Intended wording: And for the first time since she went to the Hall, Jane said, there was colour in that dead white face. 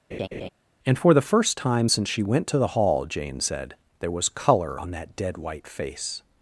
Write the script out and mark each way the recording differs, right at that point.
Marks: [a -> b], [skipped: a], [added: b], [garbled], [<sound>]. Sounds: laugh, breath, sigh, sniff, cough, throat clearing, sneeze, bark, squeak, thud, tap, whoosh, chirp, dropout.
[laugh] And for the first time since she went to the Hall, Jane said, there was colour [in -> on] that dead white face.